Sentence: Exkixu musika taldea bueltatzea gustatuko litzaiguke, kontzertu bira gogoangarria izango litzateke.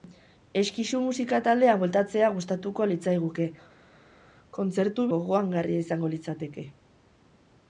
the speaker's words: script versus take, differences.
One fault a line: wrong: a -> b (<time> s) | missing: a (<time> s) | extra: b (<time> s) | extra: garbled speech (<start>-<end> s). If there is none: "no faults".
missing: bira (5.1 s)